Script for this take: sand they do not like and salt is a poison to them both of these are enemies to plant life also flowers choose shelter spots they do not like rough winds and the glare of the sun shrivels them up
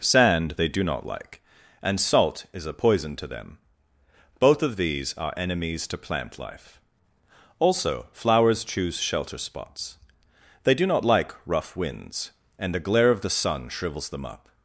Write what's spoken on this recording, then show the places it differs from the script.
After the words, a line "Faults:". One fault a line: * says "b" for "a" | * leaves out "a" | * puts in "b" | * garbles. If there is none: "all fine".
sand they do not like and salt is a poison to them both of these are enemies to plant life also flowers choose shelter spots they do not like rough winds and the glare of the sun shrivels them up
Faults:
all fine